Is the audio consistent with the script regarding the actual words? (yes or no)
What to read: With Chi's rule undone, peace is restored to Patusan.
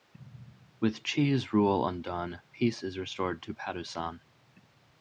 yes